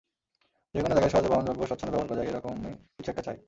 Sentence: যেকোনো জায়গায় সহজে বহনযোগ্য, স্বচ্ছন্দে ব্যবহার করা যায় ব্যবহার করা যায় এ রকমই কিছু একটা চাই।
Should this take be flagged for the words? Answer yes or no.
yes